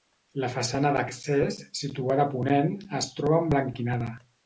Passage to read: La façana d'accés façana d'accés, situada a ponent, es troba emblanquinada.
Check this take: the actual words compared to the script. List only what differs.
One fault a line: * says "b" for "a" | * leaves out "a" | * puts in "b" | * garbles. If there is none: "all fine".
* leaves out "façana d'accés"